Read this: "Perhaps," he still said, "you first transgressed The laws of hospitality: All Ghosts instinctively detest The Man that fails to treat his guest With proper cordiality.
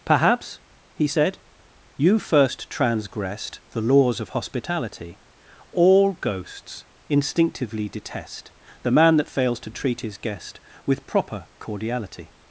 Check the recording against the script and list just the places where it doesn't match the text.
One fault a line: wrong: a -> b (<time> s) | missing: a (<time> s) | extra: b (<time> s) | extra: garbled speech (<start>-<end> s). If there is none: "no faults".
missing: still (1.1 s)